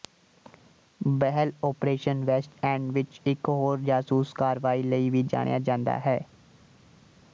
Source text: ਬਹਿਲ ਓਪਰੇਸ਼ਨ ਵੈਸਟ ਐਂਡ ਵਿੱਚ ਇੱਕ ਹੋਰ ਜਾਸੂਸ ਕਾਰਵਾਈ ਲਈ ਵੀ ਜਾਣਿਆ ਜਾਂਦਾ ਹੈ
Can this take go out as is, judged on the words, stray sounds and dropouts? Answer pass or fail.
pass